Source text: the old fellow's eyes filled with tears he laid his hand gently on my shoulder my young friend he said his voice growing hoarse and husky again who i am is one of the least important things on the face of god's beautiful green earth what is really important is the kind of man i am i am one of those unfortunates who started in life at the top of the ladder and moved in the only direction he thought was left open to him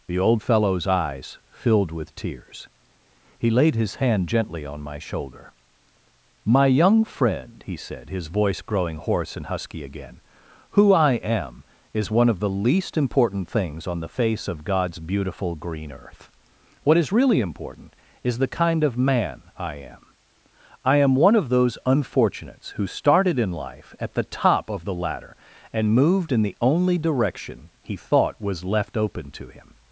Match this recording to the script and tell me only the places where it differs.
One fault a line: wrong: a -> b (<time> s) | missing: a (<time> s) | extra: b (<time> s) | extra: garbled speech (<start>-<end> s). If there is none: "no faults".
no faults